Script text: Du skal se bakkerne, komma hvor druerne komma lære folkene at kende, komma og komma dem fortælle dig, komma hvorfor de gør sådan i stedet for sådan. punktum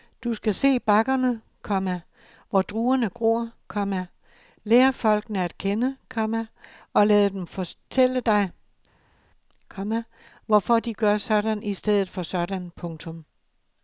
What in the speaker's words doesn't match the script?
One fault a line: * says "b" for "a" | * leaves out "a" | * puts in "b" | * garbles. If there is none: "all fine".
* puts in "gror"
* says "lade" for "komma"